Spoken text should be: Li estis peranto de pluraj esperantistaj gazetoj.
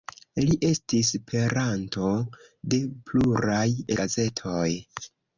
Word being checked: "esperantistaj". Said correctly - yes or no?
no